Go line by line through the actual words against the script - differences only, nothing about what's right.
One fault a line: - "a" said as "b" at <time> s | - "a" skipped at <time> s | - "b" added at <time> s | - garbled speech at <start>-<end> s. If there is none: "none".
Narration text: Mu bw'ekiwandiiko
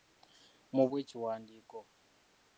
none